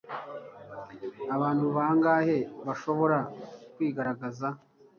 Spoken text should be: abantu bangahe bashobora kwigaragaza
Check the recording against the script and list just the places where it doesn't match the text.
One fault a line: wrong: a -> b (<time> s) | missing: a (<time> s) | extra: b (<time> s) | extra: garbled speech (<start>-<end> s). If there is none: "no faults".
no faults